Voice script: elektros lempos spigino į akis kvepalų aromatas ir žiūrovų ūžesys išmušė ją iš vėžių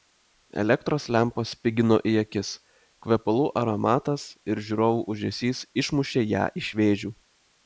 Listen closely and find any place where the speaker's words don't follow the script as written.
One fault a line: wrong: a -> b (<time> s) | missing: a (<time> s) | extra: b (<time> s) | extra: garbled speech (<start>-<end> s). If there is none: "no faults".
no faults